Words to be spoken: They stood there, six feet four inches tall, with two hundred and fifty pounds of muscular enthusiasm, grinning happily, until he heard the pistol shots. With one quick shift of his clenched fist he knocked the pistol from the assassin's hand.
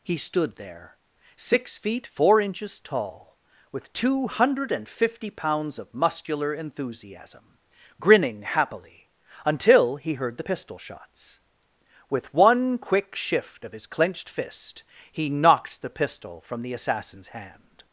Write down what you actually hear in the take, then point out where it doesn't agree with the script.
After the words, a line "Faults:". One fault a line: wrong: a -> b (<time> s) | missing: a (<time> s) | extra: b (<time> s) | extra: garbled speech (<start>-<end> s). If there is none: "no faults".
He stood there, six feet four inches tall, with two hundred and fifty pounds of muscular enthusiasm, grinning happily, until he heard the pistol shots. With one quick shift of his clenched fist he knocked the pistol from the assassin's hand.
Faults:
wrong: They -> He (0.0 s)